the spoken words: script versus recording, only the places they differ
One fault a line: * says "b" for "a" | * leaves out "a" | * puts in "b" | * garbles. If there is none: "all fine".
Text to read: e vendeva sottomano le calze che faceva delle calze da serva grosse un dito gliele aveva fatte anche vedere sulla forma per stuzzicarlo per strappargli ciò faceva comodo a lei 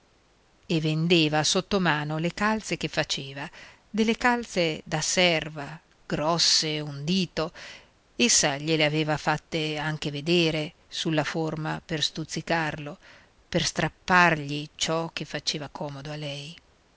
* puts in "essa"
* puts in "che"